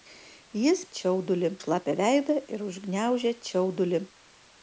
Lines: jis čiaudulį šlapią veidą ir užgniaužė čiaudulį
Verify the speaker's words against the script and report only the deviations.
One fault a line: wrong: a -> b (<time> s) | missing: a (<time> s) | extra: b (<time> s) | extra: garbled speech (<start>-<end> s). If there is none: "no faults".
no faults